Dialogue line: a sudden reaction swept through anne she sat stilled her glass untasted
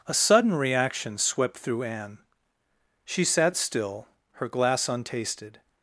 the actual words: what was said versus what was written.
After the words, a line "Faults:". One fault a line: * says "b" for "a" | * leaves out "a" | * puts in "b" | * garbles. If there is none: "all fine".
a sudden reaction swept through anne she sat still her glass untasted
Faults:
* says "still" for "stilled"